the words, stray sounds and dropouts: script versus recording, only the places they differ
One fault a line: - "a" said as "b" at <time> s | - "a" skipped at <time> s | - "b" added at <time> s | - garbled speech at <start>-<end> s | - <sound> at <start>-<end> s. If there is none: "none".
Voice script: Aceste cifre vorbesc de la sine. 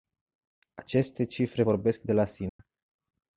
- dropout at 2.5-2.6 s